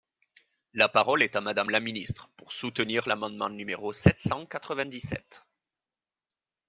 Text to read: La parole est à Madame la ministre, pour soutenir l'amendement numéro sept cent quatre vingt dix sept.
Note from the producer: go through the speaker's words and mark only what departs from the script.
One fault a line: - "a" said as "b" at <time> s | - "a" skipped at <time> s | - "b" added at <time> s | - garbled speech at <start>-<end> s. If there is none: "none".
none